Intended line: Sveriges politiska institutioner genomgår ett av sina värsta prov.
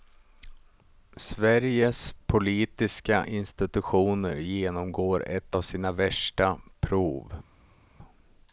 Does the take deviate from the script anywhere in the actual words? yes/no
no